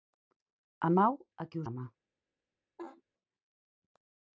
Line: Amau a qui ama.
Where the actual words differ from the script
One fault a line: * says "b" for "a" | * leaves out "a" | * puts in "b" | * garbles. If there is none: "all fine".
all fine